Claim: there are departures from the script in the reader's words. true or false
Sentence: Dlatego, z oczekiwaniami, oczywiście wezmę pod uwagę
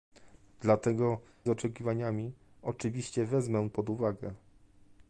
false